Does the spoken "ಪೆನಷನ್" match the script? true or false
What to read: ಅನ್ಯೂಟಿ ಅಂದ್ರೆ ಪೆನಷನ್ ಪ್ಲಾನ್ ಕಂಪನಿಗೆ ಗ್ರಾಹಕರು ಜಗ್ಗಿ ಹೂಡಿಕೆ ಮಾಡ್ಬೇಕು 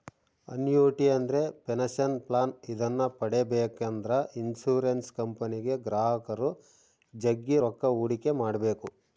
true